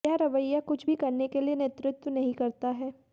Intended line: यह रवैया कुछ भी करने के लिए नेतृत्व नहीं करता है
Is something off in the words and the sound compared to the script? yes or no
no